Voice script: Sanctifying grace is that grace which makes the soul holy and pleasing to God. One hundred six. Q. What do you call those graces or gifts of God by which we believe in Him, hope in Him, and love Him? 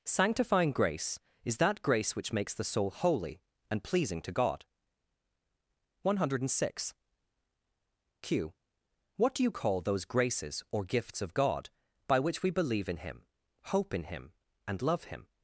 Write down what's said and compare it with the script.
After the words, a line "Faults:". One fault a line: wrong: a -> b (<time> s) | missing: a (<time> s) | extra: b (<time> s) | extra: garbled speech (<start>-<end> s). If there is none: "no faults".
Sanctifying grace is that grace which makes the soul holy and pleasing to God. One hundred six. Q. What do you call those graces or gifts of God by which we believe in Him, hope in Him, and love Him?
Faults:
no faults